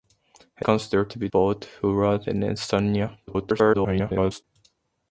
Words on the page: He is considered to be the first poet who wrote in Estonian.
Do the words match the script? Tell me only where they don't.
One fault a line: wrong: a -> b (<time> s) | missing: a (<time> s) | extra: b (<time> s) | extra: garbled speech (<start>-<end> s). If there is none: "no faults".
missing: is (0.7 s)
missing: the first (1.3 s)
extra: garbled speech (3.3-4.4 s)